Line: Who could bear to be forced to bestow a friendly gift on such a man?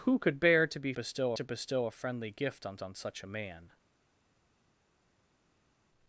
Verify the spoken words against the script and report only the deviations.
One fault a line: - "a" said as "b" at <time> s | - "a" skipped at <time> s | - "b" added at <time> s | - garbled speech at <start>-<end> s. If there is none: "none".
- "forced" said as "bestow" at 0.9 s
- "on" added at 2.8 s